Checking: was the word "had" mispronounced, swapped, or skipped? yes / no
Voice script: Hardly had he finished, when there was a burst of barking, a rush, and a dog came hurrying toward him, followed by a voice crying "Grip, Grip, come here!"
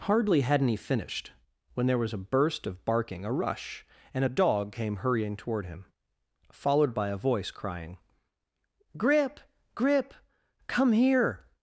yes